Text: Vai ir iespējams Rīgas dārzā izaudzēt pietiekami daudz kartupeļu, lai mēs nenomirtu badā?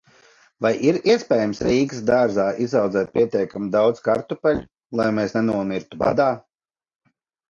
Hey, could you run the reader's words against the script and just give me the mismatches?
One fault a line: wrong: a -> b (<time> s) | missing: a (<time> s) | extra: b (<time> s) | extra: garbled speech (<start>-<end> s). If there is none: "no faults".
no faults